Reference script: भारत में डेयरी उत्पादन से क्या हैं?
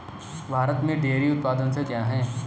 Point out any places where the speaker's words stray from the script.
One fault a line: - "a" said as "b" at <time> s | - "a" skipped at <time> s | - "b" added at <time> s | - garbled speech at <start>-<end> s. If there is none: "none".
none